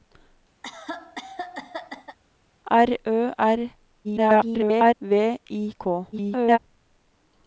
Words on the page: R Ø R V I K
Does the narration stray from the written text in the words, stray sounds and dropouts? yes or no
yes